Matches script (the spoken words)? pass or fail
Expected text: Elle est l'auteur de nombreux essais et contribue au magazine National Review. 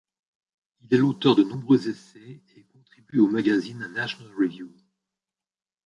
fail